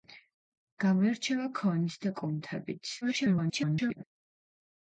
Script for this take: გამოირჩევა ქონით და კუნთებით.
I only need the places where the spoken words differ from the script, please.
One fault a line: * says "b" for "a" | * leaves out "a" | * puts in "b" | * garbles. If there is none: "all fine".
* garbles